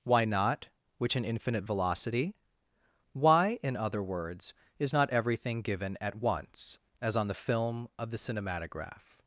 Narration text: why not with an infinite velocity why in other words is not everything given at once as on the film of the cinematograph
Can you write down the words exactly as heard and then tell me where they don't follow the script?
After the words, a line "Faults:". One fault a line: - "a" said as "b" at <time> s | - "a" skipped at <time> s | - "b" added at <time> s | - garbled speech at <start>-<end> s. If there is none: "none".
why not which an infinite velocity why in other words is not everything given at once as on the film of the cinematograph
Faults:
- "with" said as "which" at 1.0 s